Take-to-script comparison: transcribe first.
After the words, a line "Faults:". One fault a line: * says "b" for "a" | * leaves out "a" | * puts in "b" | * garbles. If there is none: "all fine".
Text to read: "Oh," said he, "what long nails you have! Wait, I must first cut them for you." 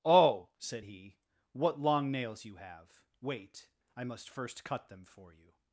"Oh," said he, "what long nails you have! Wait, I must first cut them for you."
Faults:
all fine